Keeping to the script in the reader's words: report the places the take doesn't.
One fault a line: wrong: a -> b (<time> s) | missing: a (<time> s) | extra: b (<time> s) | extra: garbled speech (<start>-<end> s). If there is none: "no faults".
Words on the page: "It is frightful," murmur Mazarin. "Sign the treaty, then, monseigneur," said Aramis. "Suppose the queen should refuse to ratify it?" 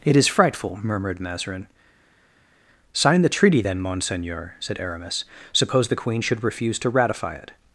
wrong: murmur -> murmured (0.8 s)